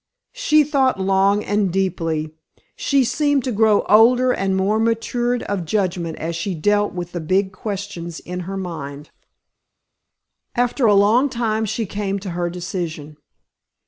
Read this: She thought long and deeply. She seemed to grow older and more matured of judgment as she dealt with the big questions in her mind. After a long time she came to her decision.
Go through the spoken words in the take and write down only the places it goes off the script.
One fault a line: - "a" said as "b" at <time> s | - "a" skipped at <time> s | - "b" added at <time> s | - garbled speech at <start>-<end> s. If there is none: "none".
none